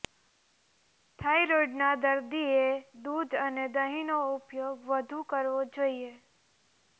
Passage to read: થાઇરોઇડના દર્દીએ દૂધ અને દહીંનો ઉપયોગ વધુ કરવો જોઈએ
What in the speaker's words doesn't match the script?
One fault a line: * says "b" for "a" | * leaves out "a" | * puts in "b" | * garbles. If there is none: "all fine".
all fine